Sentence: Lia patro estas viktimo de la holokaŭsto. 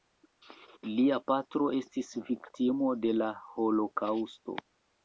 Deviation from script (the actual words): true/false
true